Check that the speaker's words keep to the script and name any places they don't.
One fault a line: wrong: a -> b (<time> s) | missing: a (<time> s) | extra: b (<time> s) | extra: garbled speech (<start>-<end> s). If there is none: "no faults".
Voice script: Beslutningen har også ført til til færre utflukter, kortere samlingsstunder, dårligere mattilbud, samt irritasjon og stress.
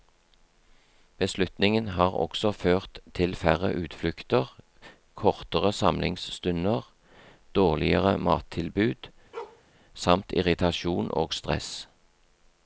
missing: til (3.4 s)